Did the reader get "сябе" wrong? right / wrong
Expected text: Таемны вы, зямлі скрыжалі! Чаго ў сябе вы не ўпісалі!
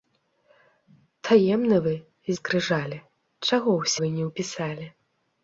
wrong